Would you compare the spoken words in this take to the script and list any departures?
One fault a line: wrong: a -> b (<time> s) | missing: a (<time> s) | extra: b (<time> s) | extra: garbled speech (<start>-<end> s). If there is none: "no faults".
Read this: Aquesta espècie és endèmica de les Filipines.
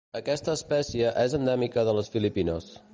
no faults